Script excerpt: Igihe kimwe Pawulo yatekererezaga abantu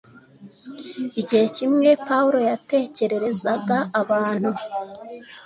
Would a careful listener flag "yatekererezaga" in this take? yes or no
no